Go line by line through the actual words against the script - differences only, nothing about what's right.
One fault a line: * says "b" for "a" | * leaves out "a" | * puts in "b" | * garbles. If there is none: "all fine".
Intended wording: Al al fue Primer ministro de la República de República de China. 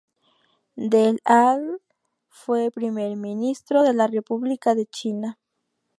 * says "Del" for "Al"
* leaves out "República de"